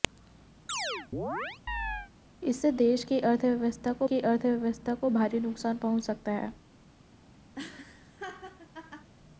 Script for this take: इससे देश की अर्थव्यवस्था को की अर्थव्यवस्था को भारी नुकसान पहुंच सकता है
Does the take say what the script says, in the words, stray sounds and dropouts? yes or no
no